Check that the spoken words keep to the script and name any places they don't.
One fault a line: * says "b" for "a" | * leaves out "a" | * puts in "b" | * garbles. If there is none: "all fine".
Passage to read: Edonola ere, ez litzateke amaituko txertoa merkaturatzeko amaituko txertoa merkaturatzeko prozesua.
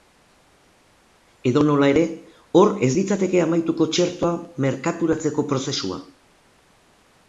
* puts in "hor"
* leaves out "amaituko txertoa merkaturatzeko"